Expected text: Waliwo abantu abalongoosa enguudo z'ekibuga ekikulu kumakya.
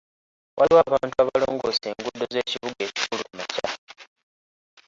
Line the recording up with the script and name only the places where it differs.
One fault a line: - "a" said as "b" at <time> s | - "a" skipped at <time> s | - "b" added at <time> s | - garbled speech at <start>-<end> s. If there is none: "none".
none